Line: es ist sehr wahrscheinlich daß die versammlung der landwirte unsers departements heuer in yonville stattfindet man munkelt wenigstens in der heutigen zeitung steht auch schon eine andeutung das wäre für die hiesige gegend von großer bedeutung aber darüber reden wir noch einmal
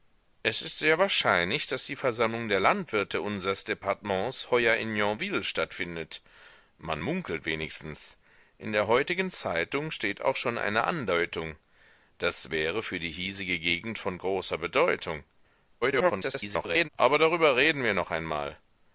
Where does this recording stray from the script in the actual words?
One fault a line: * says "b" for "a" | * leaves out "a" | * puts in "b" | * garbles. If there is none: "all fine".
* garbles